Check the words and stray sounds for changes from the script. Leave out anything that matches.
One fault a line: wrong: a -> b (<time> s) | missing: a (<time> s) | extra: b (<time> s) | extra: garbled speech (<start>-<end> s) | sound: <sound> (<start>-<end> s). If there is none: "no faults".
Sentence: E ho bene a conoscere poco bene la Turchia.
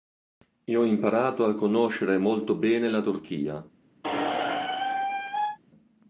wrong: bene -> imparato (0.8 s)
wrong: poco -> molto (2.2 s)
sound: squeak (4.0-5.6 s)